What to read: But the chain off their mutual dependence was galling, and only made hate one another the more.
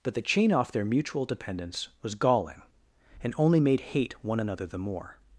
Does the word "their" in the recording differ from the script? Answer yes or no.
no